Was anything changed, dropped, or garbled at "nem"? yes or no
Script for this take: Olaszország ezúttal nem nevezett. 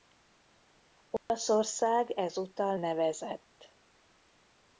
yes